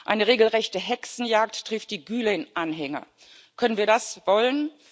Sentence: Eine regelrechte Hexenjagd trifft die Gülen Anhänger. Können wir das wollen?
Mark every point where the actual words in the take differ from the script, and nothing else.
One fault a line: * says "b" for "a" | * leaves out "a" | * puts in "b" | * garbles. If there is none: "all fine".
all fine